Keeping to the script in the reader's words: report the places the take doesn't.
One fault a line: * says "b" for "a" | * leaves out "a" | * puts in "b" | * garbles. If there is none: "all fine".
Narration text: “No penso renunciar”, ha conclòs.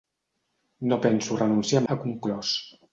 all fine